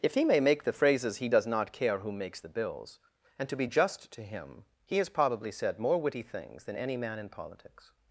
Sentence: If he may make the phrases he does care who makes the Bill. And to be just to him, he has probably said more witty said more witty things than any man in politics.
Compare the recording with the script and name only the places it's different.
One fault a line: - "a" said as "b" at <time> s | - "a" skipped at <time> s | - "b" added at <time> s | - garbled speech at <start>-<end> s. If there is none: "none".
- "not" added at 1.4 s
- "Bill" said as "Bills" at 2.5 s
- "said more witty" skipped at 6.2 s